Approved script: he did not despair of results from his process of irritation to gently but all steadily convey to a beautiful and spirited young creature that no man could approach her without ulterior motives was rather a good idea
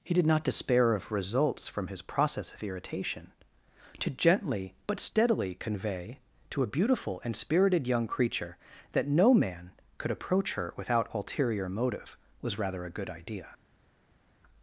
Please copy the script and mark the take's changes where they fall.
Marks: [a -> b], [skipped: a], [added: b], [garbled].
he did not despair of results from his process of irritation to gently but [skipped: all] steadily convey to a beautiful and spirited young creature that no man could approach her without ulterior [motives -> motive] was rather a good idea